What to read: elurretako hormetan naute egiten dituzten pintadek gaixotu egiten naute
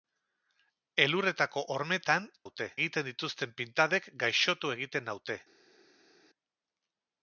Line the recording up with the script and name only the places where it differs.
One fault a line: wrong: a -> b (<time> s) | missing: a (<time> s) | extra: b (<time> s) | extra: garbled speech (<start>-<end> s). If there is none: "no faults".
no faults